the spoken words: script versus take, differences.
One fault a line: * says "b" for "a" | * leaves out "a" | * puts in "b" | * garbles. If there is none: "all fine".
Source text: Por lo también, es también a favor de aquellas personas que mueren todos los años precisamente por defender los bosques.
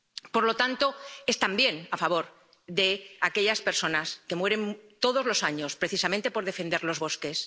* says "tanto" for "también"